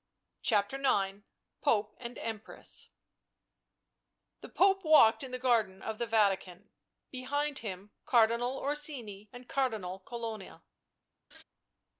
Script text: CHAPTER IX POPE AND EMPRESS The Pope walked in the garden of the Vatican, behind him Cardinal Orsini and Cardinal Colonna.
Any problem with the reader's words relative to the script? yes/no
no